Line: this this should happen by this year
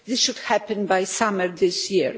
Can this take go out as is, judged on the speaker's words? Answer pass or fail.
fail